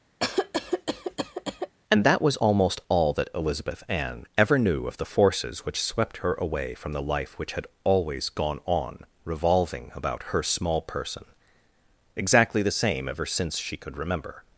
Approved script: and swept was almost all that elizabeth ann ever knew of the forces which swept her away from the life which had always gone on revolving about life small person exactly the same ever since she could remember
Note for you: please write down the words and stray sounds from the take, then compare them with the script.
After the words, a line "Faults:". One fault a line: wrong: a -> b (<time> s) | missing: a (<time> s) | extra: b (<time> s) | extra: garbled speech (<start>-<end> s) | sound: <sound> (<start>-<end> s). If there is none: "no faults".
and that was almost all that elizabeth ann ever knew of the forces which swept her away from the life which had always gone on revolving about her small person exactly the same ever since she could remember
Faults:
sound: cough (0.2-1.8 s)
wrong: swept -> that (2.0 s)
wrong: life -> her (10.3 s)